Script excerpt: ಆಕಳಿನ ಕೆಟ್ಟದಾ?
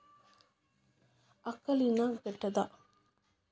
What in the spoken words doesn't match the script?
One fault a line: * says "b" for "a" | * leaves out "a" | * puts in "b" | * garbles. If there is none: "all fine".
all fine